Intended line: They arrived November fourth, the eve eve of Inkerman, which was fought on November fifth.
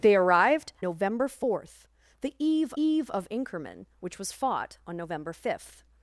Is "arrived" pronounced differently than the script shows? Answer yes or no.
no